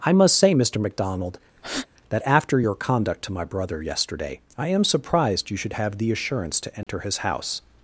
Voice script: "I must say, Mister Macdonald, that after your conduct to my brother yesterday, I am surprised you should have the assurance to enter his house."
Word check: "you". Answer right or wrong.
right